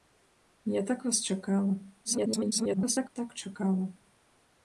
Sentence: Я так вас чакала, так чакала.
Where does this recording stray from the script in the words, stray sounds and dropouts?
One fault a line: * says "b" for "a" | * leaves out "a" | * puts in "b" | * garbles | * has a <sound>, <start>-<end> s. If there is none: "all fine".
* garbles